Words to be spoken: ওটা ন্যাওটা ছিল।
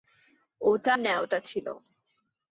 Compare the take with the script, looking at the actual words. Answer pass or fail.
pass